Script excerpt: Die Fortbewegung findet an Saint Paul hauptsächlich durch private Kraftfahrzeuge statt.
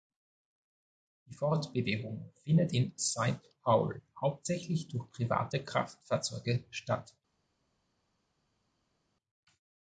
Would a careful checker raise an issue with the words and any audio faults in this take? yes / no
yes